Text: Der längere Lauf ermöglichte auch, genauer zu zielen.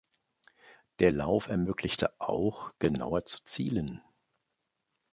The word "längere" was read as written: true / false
false